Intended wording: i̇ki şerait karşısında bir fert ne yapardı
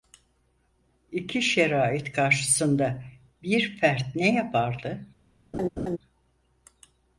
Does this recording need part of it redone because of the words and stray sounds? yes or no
yes